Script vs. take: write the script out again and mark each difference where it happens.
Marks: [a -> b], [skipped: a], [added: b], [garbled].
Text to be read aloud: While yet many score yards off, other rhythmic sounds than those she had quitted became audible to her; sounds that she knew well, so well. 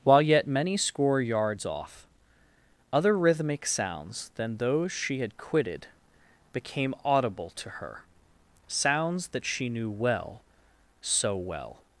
While yet many score yards off, other rhythmic sounds than those she had quitted became audible to her; sounds that she knew well, so well.